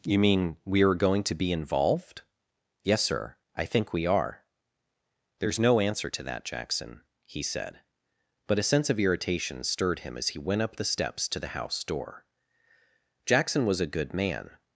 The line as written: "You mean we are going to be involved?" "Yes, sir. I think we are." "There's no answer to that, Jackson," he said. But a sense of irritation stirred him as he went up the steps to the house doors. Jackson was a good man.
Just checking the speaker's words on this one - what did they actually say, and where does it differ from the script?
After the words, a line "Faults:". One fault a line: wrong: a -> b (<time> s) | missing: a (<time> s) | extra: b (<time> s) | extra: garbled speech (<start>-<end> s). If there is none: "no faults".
"You mean we are going to be involved?" "Yes, sir. I think we are." "There's no answer to that, Jackson," he said. But a sense of irritation stirred him as he went up the steps to the house door. Jackson was a good man.
Faults:
wrong: doors -> door (11.8 s)